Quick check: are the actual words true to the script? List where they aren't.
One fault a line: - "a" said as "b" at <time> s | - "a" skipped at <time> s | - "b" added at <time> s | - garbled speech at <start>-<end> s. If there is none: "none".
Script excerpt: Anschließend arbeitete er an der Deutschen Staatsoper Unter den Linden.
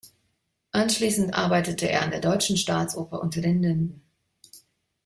none